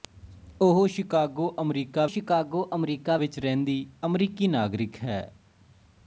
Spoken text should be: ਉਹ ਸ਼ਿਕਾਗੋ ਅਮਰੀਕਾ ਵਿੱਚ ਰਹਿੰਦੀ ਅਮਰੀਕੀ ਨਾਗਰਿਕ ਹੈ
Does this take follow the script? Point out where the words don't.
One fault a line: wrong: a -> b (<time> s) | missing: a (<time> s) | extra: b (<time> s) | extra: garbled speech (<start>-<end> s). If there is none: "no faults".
extra: ਸ਼ਿਕਾਗੋ ਅਮਰੀਕਾ (2.1 s)